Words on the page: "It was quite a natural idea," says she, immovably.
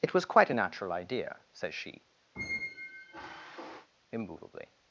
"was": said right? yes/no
yes